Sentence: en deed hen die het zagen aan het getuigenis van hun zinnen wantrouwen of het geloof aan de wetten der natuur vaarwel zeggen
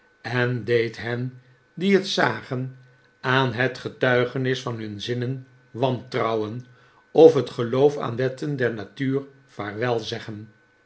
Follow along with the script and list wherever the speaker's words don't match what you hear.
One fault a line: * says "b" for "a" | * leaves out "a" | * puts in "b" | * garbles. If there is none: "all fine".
* leaves out "de"